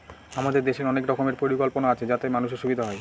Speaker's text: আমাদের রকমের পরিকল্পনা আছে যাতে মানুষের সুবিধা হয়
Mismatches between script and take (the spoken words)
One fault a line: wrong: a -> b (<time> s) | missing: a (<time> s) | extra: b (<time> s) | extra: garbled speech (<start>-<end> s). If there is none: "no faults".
extra: দেশের অনেক (0.6 s)